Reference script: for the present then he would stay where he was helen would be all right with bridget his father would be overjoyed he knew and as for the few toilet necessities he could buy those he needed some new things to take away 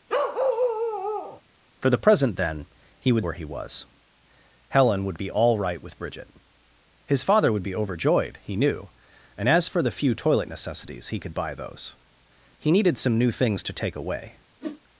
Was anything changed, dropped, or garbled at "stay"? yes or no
yes